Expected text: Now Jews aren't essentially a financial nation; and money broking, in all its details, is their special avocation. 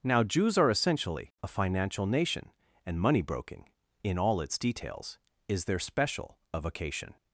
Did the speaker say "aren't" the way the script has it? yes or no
no